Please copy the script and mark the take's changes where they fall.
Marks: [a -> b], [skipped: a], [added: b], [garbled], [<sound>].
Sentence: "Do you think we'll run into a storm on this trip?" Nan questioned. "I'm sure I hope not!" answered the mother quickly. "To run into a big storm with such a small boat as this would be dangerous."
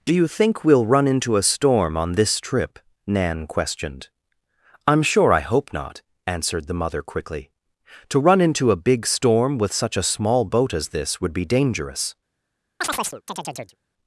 "Do you think we'll run into a storm on this trip?" Nan questioned. "I'm sure I hope not!" answered the mother quickly. "To run into a big storm with such a small boat as this would be dangerous." [chirp]